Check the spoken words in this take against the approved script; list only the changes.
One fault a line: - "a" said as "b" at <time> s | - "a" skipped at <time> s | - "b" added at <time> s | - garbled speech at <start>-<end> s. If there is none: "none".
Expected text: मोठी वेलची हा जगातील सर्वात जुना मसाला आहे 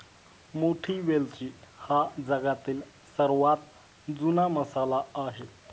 none